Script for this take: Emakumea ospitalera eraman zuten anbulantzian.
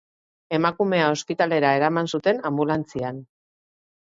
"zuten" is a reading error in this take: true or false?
false